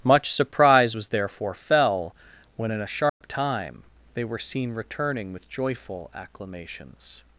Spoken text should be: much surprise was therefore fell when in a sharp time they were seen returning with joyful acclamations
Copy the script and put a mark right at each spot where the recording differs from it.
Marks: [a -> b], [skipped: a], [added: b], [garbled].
much surprise was therefore fell when in a sharp time they were seen returning with joyful acclamations